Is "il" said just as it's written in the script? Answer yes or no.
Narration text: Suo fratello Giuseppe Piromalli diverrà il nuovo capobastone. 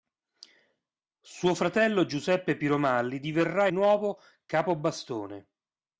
no